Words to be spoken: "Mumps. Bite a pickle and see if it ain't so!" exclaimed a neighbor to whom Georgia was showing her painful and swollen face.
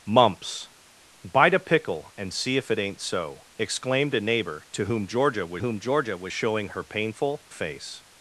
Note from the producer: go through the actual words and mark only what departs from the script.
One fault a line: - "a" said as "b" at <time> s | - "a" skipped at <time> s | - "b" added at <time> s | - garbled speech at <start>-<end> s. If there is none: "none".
- "whom Georgia was" added at 5.6 s
- "and swollen" skipped at 7.4 s